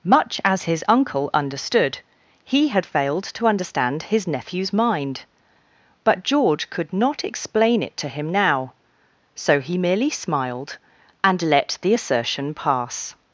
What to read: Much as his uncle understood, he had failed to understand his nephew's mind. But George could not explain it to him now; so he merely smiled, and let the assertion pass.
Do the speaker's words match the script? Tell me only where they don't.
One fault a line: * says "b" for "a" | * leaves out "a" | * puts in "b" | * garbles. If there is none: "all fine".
all fine